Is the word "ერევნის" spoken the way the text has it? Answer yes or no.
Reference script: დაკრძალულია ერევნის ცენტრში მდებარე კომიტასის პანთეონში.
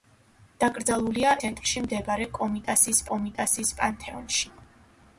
no